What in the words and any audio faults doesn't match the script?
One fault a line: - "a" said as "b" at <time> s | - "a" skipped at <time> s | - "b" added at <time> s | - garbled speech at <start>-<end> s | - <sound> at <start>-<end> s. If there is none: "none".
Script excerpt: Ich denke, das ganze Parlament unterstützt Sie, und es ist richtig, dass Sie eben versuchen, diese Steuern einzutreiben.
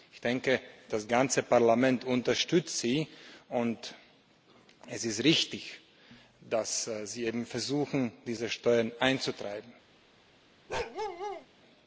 - bark at 10.7-11.5 s